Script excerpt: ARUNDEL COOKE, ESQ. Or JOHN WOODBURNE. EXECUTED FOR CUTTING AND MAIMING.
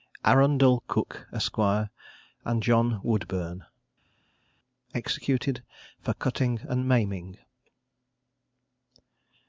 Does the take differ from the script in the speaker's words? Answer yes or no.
yes